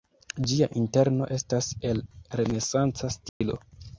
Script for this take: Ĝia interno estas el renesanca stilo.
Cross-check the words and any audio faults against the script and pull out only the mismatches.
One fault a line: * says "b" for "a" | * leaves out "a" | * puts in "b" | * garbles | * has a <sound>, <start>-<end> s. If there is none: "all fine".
* has a dropout, 3.3-3.4 s